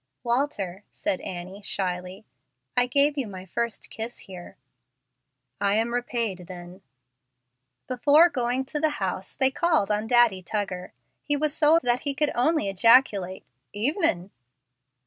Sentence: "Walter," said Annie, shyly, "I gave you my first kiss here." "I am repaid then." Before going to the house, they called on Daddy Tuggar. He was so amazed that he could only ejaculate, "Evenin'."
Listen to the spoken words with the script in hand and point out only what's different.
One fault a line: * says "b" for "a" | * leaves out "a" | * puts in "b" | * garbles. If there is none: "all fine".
* leaves out "amazed"